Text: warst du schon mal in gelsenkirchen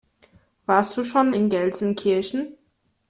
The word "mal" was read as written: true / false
false